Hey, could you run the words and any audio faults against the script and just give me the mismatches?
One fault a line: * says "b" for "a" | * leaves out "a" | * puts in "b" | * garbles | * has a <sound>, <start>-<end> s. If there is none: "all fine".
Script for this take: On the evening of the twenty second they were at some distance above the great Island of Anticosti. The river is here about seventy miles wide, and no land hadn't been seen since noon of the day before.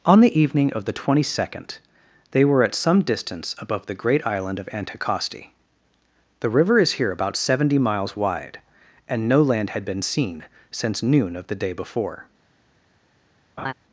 * says "had" for "hadn't"
* has a laugh, 13.6-13.7 s